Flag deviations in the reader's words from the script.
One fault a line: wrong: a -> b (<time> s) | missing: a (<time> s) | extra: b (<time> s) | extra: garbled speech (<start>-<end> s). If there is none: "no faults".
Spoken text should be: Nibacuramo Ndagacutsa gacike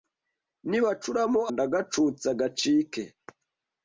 no faults